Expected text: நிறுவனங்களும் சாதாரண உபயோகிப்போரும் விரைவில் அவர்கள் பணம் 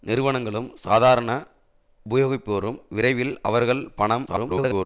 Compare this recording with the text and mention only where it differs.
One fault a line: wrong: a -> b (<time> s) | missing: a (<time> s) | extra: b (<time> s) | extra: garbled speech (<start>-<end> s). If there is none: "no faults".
extra: garbled speech (4.3-4.9 s)